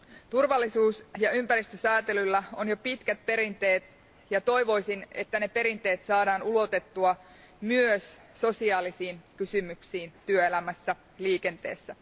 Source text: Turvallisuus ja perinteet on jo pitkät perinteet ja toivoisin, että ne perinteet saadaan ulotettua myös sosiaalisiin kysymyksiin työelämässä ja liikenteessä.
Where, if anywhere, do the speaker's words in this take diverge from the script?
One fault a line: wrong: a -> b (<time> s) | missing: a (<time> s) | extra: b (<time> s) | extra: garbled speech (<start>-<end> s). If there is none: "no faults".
wrong: perinteet -> ympäristösäätelyllä (1.3 s)